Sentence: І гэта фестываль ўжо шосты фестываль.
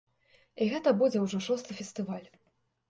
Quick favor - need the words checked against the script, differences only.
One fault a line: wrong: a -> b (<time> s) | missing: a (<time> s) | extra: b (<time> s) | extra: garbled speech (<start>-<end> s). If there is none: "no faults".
wrong: фестываль -> будзе (1.0 s)